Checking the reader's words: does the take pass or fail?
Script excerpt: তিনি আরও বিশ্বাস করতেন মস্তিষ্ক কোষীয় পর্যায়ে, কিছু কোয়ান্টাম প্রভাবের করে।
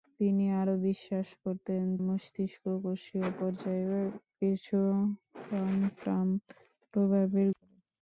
pass